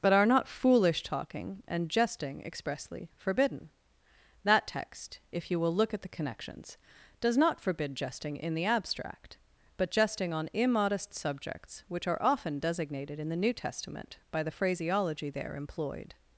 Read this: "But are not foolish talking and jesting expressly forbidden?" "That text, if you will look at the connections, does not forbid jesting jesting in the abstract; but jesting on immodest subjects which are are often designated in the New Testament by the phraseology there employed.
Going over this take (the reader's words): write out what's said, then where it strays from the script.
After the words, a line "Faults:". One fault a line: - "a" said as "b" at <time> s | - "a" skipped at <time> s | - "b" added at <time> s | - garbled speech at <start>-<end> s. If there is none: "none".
"But are not foolish talking and jesting expressly forbidden?" "That text, if you will look at the connections, does not forbid jesting in the abstract; but jesting on immodest subjects which are often designated in the New Testament by the phraseology there employed.
Faults:
- "jesting" skipped at 8.3 s
- "are" skipped at 12.2 s